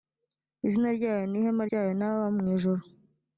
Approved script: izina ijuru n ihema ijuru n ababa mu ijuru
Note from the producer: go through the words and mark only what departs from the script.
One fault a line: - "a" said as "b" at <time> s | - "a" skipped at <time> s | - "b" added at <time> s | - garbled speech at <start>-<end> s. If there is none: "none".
- "ijuru" said as "ryayo" at 1.0 s
- "ijuru" said as "ryayo" at 1.7 s